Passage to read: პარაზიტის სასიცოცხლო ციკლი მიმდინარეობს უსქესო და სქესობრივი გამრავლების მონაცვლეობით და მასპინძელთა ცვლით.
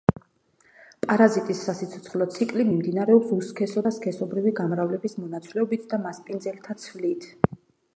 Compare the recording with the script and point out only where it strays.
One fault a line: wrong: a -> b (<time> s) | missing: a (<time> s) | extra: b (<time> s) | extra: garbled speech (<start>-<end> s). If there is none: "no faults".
no faults